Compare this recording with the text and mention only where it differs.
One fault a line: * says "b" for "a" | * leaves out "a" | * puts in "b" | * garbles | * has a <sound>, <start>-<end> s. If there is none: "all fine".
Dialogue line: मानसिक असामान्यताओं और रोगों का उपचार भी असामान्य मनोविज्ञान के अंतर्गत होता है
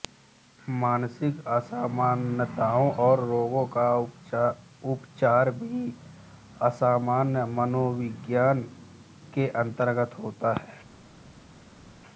all fine